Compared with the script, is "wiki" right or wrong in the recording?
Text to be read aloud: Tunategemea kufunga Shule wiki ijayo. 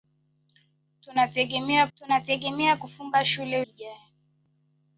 wrong